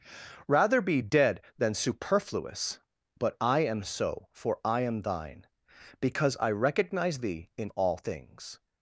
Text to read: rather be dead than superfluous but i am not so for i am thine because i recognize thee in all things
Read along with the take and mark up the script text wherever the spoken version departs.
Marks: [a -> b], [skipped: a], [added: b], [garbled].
rather be dead than superfluous but i am [skipped: not] so for i am thine because i recognize thee in all things